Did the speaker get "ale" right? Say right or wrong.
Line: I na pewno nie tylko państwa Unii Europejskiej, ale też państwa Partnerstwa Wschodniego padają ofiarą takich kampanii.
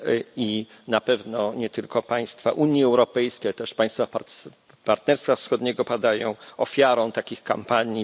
right